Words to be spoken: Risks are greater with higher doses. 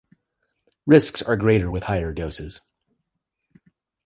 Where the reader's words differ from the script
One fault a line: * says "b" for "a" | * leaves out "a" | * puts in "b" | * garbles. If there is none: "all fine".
all fine